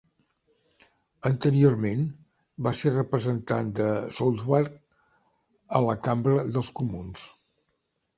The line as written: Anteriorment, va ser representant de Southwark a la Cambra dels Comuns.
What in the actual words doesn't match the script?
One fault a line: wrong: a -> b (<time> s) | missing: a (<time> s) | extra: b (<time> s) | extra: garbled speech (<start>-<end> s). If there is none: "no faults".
no faults